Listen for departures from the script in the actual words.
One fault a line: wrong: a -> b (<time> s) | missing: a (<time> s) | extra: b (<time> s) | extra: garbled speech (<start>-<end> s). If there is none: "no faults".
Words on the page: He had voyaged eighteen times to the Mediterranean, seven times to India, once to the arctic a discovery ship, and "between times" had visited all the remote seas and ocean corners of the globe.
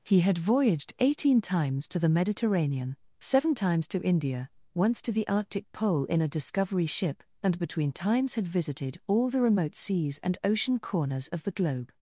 extra: pole in (5.7 s)